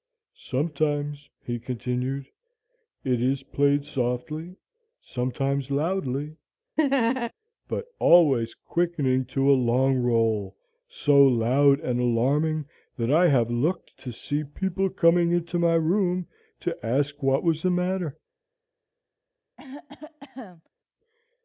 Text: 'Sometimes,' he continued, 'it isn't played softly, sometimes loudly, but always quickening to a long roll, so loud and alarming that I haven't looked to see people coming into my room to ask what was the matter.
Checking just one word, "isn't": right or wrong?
wrong